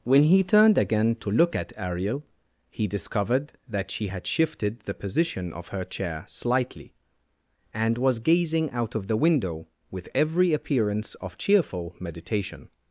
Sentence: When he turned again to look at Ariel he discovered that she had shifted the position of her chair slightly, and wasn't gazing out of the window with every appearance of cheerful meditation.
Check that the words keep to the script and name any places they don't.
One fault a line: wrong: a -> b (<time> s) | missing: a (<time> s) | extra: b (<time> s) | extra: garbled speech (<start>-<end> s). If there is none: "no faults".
wrong: wasn't -> was (8.0 s)